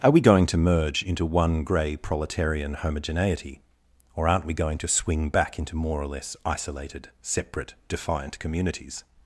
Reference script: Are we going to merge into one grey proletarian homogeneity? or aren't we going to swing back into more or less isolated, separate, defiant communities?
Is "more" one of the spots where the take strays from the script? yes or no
no